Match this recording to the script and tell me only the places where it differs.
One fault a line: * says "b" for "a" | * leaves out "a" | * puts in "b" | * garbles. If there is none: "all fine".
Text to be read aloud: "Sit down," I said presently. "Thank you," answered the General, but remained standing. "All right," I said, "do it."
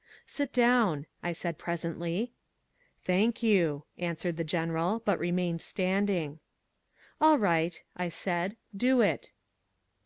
all fine